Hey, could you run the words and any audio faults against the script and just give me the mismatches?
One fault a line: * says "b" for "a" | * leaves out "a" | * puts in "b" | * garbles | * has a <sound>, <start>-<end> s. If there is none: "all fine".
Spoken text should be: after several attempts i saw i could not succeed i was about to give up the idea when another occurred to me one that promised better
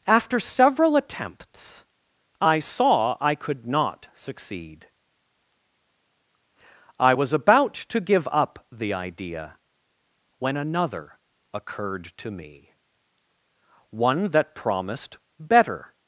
all fine